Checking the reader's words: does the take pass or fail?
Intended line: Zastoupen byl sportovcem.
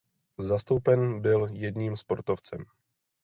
fail